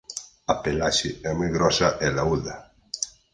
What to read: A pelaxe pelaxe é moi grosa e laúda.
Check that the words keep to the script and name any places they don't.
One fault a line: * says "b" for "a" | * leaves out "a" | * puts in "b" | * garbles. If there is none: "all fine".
* leaves out "pelaxe"